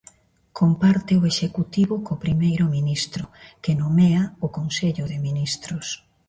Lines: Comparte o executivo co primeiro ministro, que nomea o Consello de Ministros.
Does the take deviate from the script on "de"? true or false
false